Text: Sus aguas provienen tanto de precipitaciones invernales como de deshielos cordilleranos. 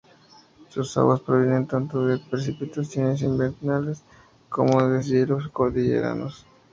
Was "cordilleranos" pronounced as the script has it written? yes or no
yes